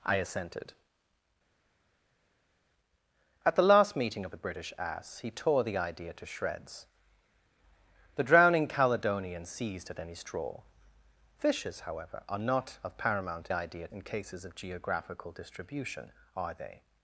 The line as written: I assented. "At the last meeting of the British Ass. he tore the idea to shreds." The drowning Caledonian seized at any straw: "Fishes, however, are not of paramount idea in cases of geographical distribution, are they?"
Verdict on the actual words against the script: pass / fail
pass